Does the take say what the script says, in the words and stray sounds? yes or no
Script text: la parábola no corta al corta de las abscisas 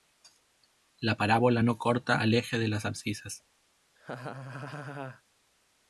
no